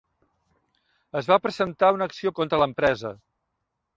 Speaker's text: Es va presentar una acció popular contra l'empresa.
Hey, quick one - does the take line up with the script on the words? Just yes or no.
no